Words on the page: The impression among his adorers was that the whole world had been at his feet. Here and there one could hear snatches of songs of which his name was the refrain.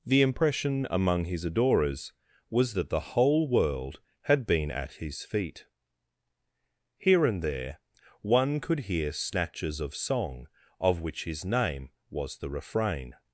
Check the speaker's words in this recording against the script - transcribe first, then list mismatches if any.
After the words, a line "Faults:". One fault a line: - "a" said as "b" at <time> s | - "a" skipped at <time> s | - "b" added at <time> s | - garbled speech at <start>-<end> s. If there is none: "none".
The impression among his adorers was that the whole world had been at his feet. Here and there one could hear snatches of song of which his name was the refrain.
Faults:
- "songs" said as "song" at 10.0 s